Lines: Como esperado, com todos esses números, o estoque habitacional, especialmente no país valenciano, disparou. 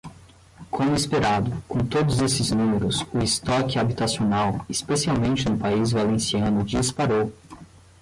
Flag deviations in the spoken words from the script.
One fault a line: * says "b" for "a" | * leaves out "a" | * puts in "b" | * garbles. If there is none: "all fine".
all fine